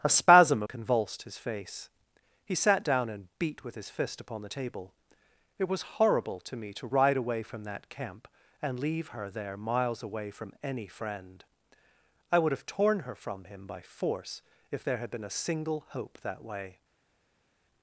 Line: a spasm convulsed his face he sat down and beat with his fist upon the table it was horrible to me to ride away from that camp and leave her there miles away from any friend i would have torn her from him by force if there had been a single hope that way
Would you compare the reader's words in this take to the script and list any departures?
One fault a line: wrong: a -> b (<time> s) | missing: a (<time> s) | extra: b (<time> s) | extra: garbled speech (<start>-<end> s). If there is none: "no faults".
no faults